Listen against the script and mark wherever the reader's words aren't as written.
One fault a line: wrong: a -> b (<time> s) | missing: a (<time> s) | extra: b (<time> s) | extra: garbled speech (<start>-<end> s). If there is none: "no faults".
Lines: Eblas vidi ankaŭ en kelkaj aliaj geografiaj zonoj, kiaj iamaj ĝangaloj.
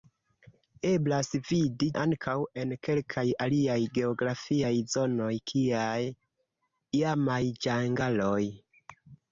no faults